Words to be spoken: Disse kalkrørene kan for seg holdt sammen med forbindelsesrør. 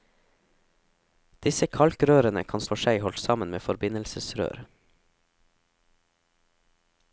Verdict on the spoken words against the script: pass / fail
pass